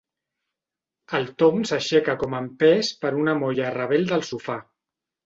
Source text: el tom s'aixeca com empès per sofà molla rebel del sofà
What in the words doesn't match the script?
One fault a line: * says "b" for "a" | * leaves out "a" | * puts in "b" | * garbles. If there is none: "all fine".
* says "una" for "sofà"